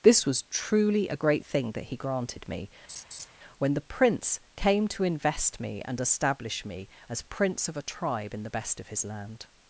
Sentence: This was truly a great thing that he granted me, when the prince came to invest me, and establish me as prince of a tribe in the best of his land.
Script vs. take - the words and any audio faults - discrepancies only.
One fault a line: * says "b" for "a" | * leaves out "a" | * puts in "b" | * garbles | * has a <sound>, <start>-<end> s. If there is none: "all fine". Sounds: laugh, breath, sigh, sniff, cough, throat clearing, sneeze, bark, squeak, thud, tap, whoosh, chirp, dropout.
* has a laugh, 2.9-3.3 s